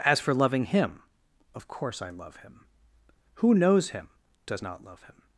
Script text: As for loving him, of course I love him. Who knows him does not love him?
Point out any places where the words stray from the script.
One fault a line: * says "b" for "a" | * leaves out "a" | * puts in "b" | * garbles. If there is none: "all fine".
all fine